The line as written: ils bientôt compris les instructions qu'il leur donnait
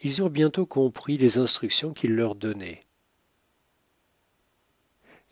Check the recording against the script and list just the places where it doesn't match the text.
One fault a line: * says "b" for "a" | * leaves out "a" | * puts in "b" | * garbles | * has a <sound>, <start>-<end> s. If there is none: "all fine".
* puts in "eurent"